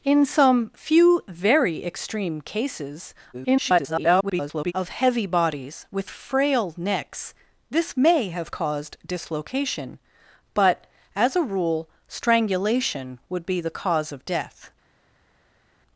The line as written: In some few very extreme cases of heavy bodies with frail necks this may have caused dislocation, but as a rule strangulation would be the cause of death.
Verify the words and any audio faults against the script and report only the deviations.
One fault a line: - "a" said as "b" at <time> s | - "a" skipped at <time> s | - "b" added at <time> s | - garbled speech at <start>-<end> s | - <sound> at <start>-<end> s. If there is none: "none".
- garbled speech at 3.3-4.7 s